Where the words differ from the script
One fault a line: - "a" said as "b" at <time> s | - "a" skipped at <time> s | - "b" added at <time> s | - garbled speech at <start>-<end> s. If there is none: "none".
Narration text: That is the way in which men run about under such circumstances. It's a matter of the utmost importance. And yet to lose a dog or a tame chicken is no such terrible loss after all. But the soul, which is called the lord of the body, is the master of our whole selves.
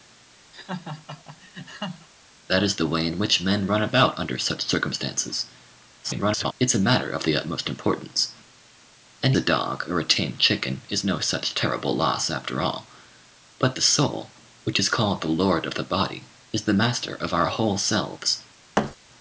- garbled speech at 6.0-6.5 s
- "yet to lose" skipped at 9.3 s